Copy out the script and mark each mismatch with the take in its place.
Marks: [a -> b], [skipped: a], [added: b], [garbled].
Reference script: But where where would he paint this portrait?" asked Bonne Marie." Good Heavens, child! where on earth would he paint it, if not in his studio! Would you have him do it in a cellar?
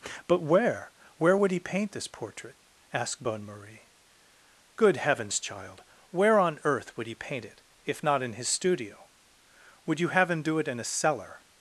But where where would he paint this portrait?" asked Bonne Marie." Good Heavens, child! where on earth would he paint it, if not in his studio! Would you have him do it in a cellar?